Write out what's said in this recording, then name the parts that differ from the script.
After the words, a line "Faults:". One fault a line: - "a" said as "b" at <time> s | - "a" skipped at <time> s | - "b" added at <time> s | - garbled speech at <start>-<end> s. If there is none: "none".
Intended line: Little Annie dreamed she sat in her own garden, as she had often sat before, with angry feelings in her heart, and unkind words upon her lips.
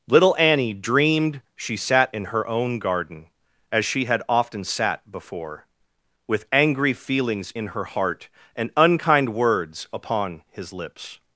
Little Annie dreamed she sat in her own garden, as she had often sat before, with angry feelings in her heart, and unkind words upon his lips.
Faults:
- "her" said as "his" at 10.5 s